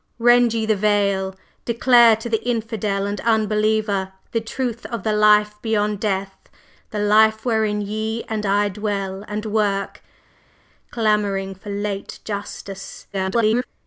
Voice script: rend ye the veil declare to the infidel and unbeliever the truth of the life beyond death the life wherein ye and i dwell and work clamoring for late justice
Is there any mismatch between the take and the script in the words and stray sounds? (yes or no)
yes